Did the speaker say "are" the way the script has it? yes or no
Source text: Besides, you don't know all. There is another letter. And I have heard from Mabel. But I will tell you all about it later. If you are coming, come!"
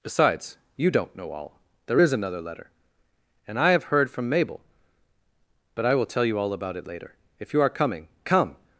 yes